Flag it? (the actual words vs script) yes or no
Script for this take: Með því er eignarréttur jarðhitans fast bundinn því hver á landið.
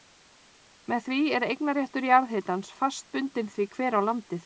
no